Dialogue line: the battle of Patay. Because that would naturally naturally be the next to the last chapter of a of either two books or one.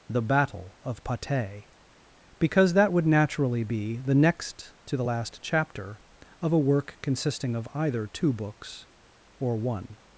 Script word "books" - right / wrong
right